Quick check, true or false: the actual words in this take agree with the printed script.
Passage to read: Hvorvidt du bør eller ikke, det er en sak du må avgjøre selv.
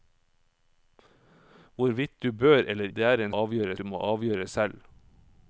false